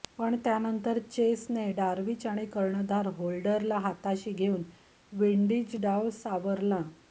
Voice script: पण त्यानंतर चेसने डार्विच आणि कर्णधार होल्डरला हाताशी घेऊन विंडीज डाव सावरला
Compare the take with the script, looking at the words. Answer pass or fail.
pass